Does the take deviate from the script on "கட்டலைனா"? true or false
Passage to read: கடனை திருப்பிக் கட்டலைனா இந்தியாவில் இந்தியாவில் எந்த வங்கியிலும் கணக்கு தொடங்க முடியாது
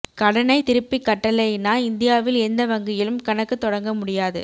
false